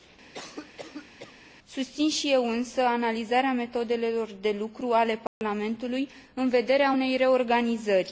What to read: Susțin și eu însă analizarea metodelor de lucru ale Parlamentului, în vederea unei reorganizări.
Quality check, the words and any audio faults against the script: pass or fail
fail